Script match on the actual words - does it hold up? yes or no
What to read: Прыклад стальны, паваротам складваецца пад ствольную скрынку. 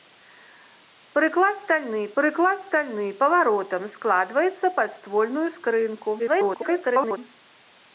no